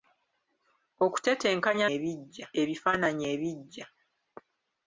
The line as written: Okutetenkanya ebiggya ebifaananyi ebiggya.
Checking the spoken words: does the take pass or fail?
pass